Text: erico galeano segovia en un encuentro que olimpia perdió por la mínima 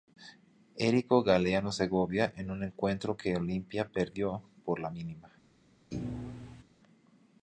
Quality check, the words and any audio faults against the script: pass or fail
fail